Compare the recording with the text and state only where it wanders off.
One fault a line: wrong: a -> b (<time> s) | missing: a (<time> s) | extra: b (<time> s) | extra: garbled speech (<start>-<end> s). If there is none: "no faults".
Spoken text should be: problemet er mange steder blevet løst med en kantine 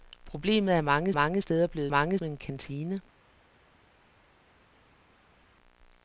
extra: mange (1.1 s)
wrong: løst -> mange (1.9 s)